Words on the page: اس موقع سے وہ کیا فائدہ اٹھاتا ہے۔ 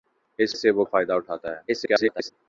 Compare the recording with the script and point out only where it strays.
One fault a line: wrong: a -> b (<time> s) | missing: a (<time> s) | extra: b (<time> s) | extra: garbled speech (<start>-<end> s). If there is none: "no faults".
missing: موقع (0.6 s)
missing: کیا (0.8 s)
extra: garbled speech (1.7-2.3 s)